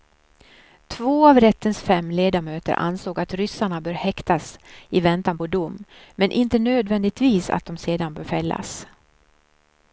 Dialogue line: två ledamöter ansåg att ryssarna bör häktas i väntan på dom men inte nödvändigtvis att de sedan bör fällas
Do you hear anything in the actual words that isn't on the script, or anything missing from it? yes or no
yes